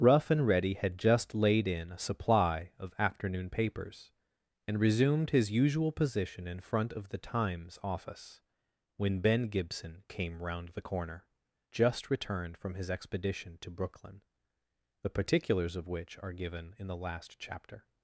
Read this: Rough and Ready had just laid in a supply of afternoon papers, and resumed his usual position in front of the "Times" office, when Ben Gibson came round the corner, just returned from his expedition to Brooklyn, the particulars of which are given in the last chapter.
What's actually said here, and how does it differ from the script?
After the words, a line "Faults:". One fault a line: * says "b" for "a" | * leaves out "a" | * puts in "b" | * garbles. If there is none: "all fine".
Rough and Ready had just laid in a supply of afternoon papers, and resumed his usual position in front of the "Times" office, when Ben Gibson came round the corner, just returned from his expedition to Brooklyn, the particulars of which are given in the last chapter.
Faults:
all fine